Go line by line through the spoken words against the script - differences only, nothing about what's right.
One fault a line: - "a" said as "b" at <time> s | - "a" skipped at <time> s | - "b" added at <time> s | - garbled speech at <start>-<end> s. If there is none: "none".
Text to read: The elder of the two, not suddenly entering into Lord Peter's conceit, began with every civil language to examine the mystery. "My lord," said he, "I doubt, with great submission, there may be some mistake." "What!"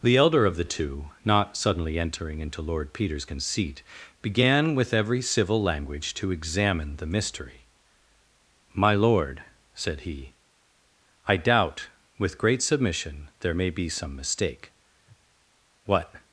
none